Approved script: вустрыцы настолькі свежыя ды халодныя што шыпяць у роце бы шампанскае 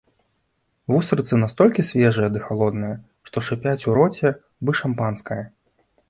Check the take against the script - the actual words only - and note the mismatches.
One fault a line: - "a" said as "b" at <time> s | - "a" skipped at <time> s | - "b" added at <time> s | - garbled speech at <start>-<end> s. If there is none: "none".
none